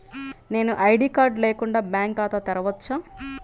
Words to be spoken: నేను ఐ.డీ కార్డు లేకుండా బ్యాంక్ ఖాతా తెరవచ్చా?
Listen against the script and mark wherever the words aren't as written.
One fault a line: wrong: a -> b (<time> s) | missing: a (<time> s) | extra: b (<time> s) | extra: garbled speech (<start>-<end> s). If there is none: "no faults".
no faults